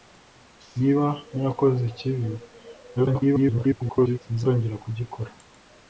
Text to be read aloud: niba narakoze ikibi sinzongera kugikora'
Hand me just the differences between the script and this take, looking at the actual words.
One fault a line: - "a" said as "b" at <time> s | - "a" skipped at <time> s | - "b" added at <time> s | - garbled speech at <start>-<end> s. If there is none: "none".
- garbled speech at 3.0-4.2 s